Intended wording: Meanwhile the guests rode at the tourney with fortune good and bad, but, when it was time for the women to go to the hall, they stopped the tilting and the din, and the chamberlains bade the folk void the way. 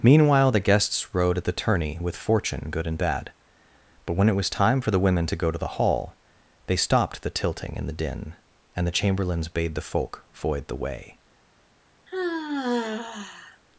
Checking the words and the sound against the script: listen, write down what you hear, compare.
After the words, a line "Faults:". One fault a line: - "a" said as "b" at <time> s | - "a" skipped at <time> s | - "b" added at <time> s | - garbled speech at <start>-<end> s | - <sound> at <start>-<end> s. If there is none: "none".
Meanwhile the guests rode at the tourney with fortune good and bad, but, when it was time for the women to go to the hall, they stopped the tilting and the din, and the chamberlains bade the folk void the way.
Faults:
- sigh at 12.1-13.6 s